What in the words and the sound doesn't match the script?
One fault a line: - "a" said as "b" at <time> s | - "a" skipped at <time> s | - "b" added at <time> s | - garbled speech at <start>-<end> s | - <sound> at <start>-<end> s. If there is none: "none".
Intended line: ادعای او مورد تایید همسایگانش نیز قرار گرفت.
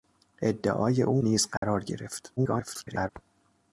- "مورد تایید همسایگانش" skipped at 1.2 s
- dropout at 1.6-1.6 s
- garbled speech at 2.4-3.1 s